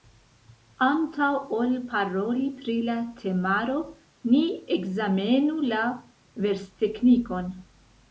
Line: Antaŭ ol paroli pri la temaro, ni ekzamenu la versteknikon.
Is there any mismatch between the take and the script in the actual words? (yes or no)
no